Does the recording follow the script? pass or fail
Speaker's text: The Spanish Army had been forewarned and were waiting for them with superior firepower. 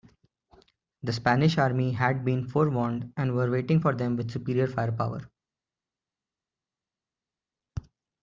pass